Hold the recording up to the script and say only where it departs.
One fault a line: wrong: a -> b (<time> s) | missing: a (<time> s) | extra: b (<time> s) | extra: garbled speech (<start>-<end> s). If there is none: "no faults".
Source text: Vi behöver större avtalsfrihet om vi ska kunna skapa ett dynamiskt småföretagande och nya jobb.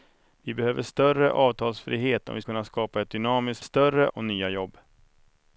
missing: ska (2.4 s)
wrong: småföretagande -> större (3.6 s)